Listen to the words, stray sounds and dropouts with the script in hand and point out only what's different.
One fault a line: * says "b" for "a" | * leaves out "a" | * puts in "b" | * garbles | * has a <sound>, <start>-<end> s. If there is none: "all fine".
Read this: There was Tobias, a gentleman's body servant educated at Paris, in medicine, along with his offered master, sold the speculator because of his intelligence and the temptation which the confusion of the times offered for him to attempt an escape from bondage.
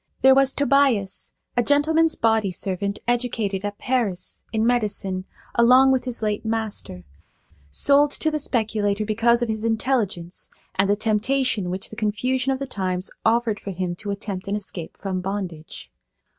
* says "late" for "offered"
* puts in "to"